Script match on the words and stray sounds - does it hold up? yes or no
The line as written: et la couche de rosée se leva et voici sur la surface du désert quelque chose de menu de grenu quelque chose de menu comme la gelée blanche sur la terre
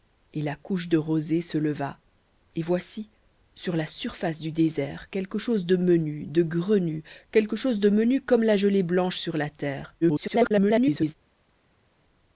no